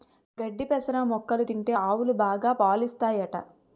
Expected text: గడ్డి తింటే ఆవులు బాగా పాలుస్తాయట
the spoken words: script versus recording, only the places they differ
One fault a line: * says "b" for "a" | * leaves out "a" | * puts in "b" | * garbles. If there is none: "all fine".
* puts in "పెసర మొక్కలు"